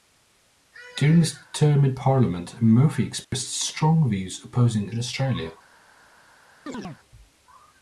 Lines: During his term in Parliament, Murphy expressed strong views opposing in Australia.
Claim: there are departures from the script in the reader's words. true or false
false